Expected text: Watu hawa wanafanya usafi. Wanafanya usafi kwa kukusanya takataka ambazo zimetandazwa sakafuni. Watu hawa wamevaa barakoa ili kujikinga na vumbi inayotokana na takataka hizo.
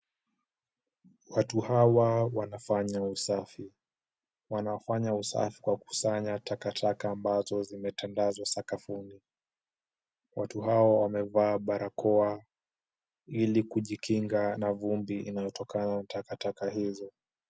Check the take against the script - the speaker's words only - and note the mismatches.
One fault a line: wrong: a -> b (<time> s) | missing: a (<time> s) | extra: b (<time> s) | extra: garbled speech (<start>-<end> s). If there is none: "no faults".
no faults